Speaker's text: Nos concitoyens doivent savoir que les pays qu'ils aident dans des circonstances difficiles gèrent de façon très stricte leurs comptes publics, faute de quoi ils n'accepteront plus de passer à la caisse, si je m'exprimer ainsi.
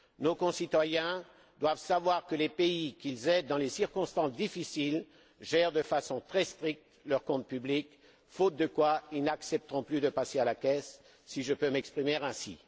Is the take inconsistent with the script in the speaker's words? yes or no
yes